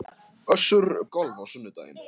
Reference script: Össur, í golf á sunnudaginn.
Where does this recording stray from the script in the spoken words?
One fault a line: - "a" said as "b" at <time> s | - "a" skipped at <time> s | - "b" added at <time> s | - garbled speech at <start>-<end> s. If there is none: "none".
none